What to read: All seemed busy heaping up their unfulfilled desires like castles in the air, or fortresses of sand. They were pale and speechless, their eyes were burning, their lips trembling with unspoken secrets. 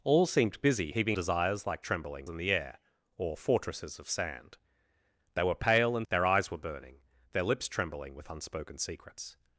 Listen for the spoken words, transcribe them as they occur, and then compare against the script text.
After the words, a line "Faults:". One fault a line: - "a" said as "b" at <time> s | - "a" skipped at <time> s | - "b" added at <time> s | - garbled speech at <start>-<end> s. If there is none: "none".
All seemed busy heaping desires like trembling in the air, or fortresses of sand. They were pale and their eyes were burning, their lips trembling with unspoken secrets.
Faults:
- "up their unfulfilled" skipped at 1.2 s
- "castles" said as "trembling" at 1.8 s
- "speechless" skipped at 6.1 s